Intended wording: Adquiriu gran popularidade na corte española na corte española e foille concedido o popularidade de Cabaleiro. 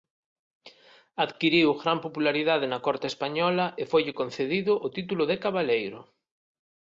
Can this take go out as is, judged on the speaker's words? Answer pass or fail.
fail